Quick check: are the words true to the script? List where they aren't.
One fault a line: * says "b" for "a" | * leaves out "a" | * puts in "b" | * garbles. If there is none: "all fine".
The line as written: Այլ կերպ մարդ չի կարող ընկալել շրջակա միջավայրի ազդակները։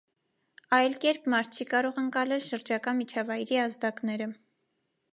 all fine